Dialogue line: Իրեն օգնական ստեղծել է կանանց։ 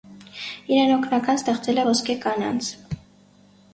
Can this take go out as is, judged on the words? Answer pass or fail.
fail